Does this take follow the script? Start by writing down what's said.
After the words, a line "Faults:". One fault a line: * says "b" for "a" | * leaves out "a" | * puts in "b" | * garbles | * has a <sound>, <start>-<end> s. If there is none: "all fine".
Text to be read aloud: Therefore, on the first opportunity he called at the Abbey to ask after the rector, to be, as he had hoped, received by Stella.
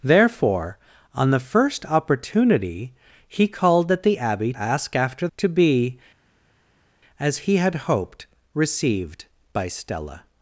Therefore, on the first opportunity he called at the Abbey ask after to be, as he had hoped, received by Stella.
Faults:
* leaves out "to"
* leaves out "the rector"